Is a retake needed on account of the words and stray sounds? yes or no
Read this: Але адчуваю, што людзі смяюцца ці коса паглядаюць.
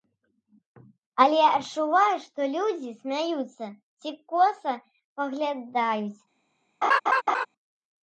yes